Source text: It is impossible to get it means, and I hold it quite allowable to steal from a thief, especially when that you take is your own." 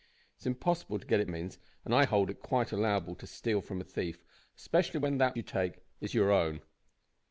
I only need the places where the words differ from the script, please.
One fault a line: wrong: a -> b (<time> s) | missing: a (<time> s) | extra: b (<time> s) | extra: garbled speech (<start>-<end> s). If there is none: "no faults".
no faults